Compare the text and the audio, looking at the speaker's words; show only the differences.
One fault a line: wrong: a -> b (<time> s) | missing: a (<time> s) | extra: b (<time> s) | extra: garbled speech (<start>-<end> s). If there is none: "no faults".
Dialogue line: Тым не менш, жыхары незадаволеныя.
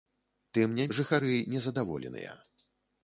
missing: менш (0.9 s)